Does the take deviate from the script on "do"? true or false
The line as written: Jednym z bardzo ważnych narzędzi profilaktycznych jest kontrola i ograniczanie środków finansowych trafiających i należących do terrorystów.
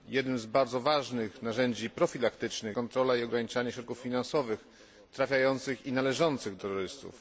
true